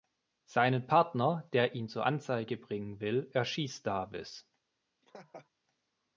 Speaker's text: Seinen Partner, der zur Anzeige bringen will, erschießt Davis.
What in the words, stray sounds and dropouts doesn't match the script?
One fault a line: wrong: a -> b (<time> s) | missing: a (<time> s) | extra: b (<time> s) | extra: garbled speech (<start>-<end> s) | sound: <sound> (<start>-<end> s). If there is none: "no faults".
extra: ihn (1.8 s)
sound: laugh (5.0-5.5 s)